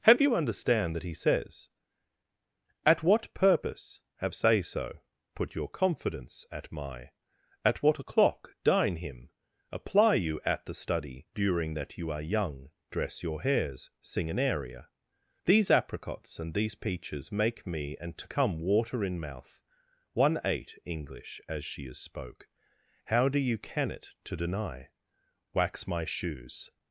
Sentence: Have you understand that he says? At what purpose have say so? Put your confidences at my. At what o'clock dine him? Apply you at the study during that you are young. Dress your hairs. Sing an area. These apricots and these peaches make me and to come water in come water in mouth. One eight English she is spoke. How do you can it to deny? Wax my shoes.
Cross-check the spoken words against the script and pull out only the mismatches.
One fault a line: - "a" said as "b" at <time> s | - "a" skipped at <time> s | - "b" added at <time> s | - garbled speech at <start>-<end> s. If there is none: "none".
- "confidences" said as "confidence" at 5.7 s
- "come water in" skipped at 19.2 s
- "as" added at 21.5 s